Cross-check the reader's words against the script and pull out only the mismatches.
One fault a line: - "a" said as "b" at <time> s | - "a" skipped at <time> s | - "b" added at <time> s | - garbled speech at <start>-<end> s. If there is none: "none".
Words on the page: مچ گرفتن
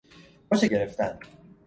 none